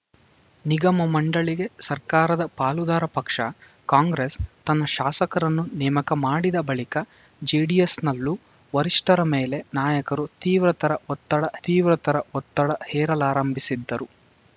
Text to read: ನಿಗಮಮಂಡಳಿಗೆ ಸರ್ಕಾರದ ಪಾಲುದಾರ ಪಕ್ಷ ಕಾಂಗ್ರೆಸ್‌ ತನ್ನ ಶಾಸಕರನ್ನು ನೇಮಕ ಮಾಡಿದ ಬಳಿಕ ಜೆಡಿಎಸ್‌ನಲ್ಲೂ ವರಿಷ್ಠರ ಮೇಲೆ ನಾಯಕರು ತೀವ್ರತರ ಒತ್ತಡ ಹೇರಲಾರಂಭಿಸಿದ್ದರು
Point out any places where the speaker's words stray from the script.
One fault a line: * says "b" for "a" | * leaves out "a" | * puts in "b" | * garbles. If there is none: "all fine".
* puts in "ತೀವ್ರತರ ಒತ್ತಡ"